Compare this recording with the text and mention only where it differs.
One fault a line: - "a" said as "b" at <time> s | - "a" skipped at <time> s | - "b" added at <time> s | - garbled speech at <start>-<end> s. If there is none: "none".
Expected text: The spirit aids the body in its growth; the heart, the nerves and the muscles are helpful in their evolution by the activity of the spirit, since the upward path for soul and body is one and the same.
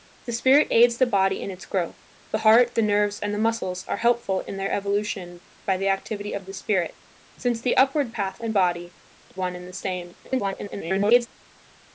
- "for soul" skipped at 8.4 s
- "is" skipped at 8.9 s
- garbled speech at 10.2-11.3 s